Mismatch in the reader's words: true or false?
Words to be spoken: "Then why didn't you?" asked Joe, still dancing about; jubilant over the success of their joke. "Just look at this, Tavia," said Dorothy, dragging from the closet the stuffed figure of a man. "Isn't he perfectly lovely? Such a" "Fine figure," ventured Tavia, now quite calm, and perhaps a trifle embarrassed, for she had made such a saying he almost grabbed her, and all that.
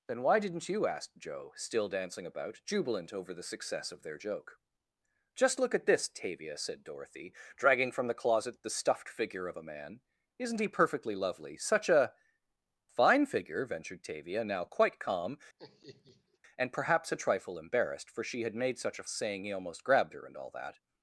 false